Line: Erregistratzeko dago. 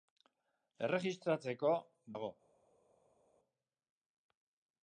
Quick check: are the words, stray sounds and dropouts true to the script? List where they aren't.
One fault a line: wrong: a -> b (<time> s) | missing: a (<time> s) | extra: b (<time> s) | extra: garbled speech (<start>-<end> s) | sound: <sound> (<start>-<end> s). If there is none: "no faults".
no faults